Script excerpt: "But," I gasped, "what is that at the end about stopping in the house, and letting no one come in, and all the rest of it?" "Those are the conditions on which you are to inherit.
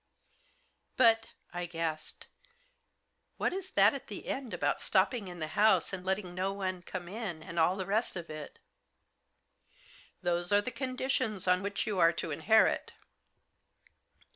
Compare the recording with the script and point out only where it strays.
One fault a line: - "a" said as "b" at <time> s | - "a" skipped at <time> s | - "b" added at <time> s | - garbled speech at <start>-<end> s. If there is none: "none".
none